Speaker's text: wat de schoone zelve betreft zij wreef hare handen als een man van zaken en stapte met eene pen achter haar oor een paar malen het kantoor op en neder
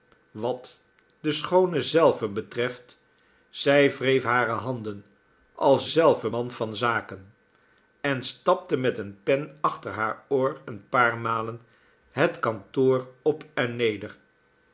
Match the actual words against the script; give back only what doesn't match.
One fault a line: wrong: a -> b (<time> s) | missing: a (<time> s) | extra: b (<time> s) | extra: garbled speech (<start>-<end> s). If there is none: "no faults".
wrong: een -> zelve (5.8 s)